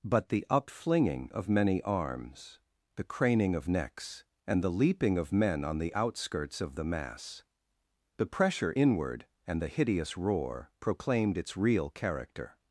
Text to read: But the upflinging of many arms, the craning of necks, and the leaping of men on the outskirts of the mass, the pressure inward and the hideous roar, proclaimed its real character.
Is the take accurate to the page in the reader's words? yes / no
yes